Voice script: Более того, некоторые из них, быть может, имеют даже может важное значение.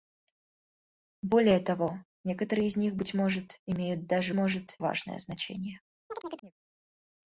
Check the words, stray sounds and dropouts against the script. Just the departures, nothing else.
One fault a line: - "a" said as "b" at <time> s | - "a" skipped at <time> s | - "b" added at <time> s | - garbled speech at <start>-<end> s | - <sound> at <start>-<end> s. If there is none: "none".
- chirp at 6.1-6.5 s